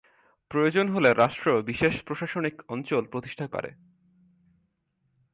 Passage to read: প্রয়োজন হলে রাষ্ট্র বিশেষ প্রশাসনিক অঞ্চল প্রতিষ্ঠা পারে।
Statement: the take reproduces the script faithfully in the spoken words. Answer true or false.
true